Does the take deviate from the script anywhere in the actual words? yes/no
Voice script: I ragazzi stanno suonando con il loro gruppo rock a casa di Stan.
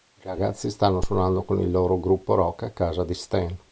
no